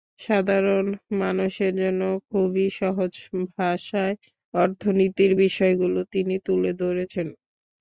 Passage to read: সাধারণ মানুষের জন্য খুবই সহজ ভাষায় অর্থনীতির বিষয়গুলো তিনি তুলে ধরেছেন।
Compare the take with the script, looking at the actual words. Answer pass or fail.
pass